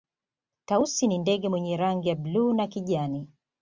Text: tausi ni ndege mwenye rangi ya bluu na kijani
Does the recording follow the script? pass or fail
pass